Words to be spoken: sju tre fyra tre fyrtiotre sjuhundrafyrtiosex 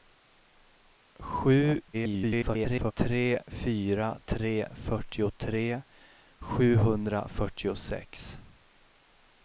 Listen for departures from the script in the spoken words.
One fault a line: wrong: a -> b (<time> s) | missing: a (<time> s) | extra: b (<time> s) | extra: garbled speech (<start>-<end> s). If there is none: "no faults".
extra: garbled speech (1.9-2.9 s)